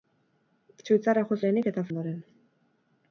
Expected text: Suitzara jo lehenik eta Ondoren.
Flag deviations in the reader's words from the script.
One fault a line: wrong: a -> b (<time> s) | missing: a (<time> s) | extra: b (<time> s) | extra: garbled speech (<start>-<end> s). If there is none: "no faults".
no faults